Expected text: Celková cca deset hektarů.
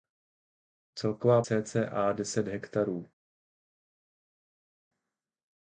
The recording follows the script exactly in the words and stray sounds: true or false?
true